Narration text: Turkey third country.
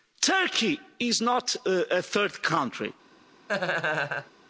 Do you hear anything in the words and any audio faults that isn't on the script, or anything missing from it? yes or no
yes